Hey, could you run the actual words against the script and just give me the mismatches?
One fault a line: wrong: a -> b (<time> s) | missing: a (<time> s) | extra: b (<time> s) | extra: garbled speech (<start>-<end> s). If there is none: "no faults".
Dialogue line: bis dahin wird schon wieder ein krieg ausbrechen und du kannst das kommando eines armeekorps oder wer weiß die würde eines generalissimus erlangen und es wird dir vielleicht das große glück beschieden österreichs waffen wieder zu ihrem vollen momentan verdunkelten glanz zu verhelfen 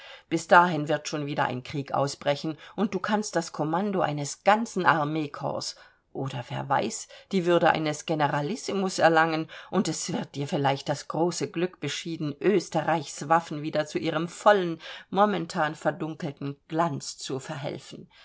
extra: ganzen (4.4 s)